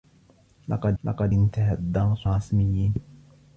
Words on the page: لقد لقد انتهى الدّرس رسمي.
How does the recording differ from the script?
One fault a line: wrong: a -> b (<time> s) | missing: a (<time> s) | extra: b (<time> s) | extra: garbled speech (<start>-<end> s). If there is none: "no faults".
no faults